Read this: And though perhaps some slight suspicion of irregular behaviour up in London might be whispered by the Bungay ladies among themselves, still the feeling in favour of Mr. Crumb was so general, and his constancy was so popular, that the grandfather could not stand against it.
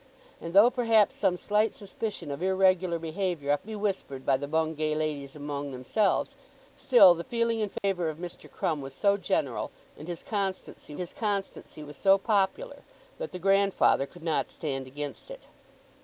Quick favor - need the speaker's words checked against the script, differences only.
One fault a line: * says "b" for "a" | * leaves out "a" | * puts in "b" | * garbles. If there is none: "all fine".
* leaves out "in London might"
* puts in "his constancy"